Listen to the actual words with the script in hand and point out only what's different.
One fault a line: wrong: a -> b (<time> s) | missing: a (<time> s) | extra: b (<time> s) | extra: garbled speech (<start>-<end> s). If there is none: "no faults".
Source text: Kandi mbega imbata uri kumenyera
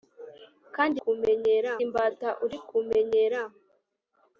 wrong: mbega -> kumenyera (1.0 s)